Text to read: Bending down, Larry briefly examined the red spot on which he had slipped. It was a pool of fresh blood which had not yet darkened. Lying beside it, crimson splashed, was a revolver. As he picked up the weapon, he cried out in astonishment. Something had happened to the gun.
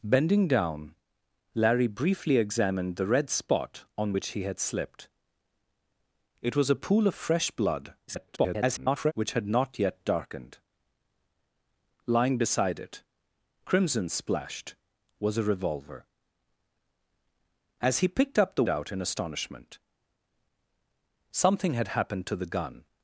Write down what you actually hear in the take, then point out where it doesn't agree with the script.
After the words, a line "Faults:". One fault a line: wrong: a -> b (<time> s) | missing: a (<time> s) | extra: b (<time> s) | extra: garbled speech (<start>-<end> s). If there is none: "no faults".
Bending down, Larry briefly examined the red spot on which he had slipped. It was a pool of fresh blood [garbled] which had not yet darkened. Lying beside it, crimson splashed, was a revolver. As he picked up the out in astonishment. Something had happened to the gun.
Faults:
extra: garbled speech (8.1-9.1 s)
missing: weapon he cried (18.7 s)